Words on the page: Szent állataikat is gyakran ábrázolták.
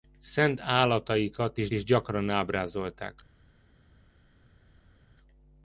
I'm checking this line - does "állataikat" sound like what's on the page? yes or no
yes